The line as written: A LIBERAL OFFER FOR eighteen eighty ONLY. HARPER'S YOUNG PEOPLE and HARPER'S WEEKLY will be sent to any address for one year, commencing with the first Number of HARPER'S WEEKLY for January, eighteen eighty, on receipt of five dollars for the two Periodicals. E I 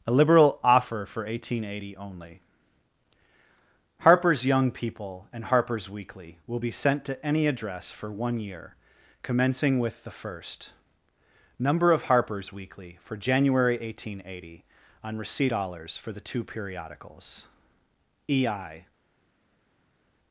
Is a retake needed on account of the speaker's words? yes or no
yes